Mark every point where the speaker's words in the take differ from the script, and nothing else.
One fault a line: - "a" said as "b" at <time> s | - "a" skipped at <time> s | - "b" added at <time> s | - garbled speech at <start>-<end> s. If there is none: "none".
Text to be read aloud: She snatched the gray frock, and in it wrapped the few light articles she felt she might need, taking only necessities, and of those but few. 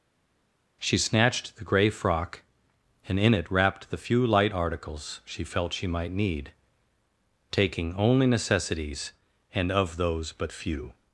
none